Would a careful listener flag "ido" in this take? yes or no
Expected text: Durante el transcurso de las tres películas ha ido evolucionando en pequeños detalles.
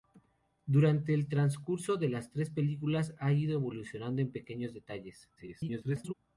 no